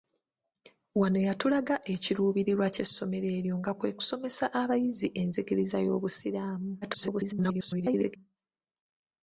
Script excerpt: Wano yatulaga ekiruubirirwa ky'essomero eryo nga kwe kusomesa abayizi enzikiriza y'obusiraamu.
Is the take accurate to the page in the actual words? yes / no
no